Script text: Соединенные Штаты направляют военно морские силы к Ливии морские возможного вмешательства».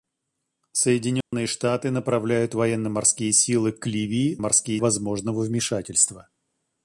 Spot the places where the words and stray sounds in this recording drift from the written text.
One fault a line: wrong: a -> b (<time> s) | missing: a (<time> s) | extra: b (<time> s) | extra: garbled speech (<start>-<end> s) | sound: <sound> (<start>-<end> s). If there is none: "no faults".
sound: dropout (1.2-1.3 s)